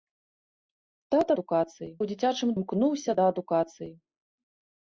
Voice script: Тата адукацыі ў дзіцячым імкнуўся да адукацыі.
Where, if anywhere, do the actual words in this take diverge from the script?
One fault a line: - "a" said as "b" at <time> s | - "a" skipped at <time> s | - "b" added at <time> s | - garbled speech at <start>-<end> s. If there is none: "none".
none